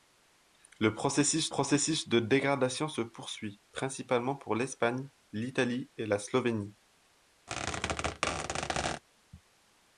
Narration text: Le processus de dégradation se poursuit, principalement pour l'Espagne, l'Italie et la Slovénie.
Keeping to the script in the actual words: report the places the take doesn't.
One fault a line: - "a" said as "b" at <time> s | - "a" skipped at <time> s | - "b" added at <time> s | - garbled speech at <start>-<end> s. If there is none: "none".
- "processus" added at 1.5 s